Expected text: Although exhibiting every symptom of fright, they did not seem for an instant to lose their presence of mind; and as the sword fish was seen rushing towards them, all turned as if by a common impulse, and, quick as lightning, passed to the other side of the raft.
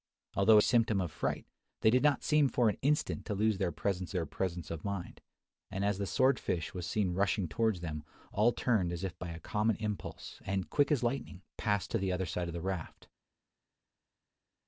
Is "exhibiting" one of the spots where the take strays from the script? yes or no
yes